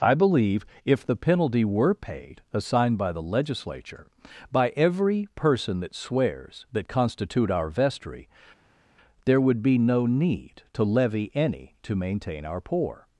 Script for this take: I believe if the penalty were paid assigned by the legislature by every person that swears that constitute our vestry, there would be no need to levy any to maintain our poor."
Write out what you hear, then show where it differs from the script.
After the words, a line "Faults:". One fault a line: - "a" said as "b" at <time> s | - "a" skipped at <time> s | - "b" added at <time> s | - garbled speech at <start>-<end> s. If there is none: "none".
I believe if the penalty were paid assigned by the legislature by every person that swears that constitute our vestry, there would be no need to levy any to maintain our poor."
Faults:
none